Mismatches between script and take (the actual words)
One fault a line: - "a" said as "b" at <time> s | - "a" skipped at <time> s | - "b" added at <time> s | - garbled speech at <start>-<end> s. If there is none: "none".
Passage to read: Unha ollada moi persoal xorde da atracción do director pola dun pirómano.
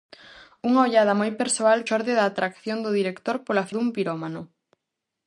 none